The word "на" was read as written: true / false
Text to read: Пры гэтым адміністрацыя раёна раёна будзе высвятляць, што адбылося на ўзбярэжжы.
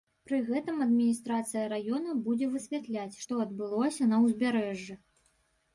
true